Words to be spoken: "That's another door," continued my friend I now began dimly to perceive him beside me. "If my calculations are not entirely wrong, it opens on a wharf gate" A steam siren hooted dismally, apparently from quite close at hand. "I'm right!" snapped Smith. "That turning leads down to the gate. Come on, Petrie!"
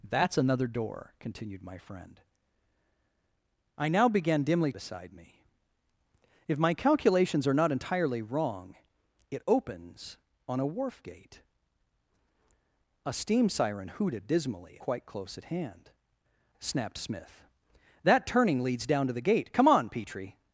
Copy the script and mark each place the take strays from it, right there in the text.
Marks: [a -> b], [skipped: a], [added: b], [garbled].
"That's another door," continued my friend I now began dimly [skipped: to perceive him] beside me. "If my calculations are not entirely wrong, it opens on a wharf gate" A steam siren hooted dismally, [skipped: apparently from] quite close at hand. [skipped: "I'm right!"] snapped Smith. "That turning leads down to the gate. Come on, Petrie!"